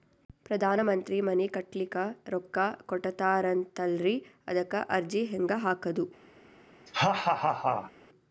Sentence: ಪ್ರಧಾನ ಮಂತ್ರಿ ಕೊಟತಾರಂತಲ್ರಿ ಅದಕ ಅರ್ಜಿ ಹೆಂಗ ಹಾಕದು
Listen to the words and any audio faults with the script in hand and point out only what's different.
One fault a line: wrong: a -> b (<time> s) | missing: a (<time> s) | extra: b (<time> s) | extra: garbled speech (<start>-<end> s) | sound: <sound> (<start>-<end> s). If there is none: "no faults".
extra: ಮನಿ ಕಟ್ಲಿಕ ರೊಕ್ಕ (1.2 s)
sound: laugh (6.9-7.9 s)